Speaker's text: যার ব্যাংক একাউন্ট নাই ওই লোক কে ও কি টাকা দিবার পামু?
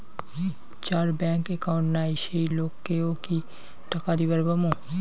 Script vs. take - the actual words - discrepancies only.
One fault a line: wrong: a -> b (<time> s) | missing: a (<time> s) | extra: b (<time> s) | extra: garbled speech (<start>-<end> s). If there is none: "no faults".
wrong: ওই -> সেই (2.2 s)